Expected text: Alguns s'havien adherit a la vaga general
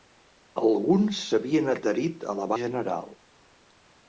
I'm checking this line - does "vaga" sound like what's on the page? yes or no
no